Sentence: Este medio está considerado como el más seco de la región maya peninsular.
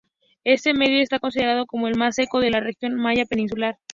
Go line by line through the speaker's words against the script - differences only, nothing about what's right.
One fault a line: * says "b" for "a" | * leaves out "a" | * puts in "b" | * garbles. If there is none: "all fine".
all fine